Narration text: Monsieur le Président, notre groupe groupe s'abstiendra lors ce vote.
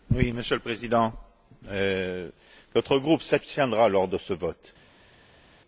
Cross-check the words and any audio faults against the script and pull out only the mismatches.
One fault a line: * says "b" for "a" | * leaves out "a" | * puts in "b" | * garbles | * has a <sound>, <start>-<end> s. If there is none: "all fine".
* leaves out "groupe"
* puts in "de"